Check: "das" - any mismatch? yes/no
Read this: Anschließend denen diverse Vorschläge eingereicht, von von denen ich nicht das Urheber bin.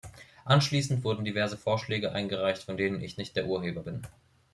yes